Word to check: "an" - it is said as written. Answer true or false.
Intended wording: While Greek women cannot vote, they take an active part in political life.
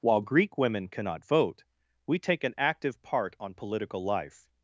true